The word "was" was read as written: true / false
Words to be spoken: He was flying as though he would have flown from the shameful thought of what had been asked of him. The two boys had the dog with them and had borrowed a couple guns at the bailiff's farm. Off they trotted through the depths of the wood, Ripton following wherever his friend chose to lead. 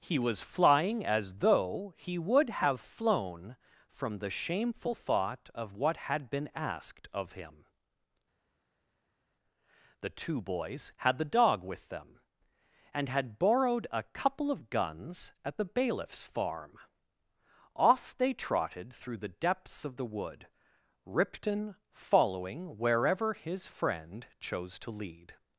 true